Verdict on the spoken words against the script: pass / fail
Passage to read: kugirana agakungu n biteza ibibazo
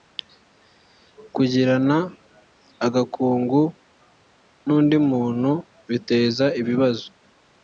fail